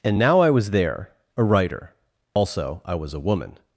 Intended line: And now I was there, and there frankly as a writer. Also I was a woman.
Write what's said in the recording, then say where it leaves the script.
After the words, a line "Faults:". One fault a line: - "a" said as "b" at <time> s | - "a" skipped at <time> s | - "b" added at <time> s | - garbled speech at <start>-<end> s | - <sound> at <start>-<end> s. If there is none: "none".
And now I was there, a writer. Also I was a woman.
Faults:
- "and there frankly as" skipped at 1.1 s
- dropout at 2.3-2.4 s